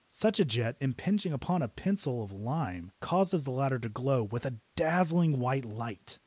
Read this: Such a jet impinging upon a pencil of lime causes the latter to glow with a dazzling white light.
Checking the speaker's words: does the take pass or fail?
pass